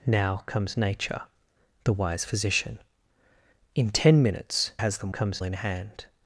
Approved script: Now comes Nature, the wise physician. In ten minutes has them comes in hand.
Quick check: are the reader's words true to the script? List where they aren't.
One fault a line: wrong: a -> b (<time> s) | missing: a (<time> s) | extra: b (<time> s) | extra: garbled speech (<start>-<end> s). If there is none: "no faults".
no faults